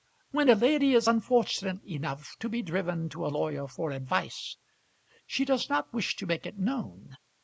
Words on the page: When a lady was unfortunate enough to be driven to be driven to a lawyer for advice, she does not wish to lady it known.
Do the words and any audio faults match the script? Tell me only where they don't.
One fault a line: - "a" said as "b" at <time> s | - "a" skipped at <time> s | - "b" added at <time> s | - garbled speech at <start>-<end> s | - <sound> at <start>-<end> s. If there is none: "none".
- "was" said as "is" at 0.9 s
- "be driven to" skipped at 3.3 s
- "lady" said as "make" at 6.2 s